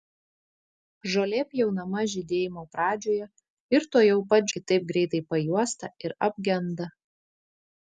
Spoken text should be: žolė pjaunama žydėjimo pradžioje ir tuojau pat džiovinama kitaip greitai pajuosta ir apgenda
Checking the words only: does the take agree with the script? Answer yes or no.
no